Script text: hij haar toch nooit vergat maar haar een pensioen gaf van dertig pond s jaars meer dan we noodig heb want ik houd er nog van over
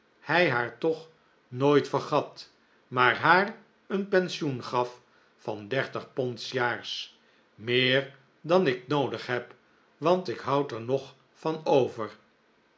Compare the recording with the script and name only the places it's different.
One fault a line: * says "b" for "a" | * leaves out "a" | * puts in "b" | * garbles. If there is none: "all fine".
* says "ik" for "we"